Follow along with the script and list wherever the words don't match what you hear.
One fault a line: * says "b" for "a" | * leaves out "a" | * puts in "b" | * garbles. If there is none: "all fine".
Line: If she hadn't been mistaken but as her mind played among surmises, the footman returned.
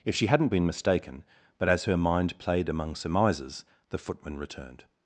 all fine